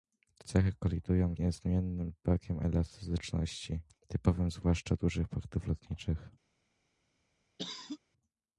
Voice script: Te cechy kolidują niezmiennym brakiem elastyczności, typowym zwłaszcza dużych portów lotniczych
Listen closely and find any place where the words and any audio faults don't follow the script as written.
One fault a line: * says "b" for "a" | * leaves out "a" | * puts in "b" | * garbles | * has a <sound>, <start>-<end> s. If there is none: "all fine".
* has a cough, 7.6-8.0 s